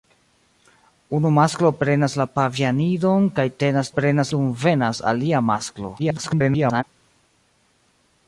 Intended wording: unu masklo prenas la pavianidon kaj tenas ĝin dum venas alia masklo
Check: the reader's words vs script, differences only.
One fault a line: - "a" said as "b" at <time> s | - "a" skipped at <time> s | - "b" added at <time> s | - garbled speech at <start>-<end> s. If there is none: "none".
- "ĝin" said as "prenas" at 4.0 s
- garbled speech at 6.0-6.8 s